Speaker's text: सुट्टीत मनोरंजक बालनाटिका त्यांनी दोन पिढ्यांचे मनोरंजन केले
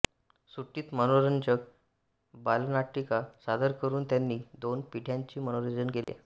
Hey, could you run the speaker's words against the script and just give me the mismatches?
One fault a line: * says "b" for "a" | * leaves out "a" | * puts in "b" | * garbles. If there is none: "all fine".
* puts in "सादर करून"